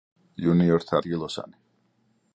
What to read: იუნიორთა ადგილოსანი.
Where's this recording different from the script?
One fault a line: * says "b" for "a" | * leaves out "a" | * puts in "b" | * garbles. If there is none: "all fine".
all fine